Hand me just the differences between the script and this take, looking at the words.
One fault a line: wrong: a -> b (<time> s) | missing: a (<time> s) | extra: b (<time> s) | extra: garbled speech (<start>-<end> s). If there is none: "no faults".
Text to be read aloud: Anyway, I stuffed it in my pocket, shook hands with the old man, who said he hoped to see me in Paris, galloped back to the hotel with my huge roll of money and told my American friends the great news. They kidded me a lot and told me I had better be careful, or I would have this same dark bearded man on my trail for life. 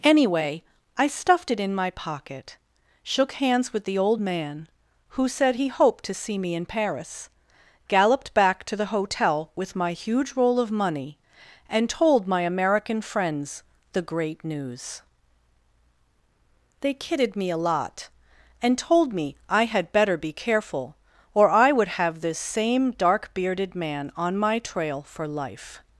no faults